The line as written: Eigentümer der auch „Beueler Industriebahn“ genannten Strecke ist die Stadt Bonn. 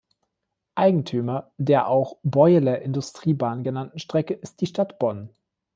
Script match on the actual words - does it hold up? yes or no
yes